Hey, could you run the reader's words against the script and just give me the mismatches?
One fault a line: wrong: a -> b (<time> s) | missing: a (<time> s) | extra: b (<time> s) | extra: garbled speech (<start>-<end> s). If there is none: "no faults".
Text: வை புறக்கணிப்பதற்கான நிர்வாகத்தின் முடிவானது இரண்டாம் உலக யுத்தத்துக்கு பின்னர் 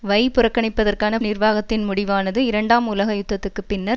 no faults